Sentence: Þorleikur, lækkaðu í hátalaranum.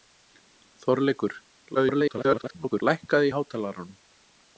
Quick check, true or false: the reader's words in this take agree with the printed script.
false